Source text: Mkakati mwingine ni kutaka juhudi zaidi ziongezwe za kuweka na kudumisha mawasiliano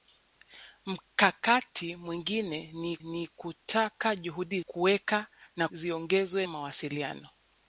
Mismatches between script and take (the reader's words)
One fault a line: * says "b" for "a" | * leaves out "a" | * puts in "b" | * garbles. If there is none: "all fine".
* puts in "ni"
* leaves out "zaidi ziongezwe za"
* says "ziongezwe" for "kudumisha"